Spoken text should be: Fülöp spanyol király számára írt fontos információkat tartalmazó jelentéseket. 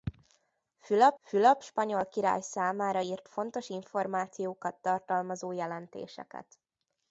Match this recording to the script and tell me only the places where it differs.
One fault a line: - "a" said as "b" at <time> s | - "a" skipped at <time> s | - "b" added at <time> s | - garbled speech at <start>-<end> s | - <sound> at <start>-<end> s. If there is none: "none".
- "fülöp" added at 1.2 s